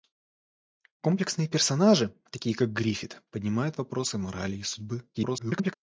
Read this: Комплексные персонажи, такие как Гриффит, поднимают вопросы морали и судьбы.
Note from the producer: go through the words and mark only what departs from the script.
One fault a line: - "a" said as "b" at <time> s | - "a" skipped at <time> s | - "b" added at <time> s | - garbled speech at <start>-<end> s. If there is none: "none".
- garbled speech at 5.1-5.7 s